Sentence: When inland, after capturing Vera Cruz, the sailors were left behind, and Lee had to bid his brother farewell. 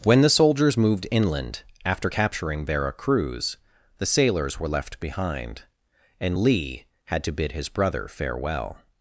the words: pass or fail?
fail